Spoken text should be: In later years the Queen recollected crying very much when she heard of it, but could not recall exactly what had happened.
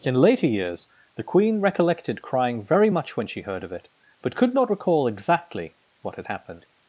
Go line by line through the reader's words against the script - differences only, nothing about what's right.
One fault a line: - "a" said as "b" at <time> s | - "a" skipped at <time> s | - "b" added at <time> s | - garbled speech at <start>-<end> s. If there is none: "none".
none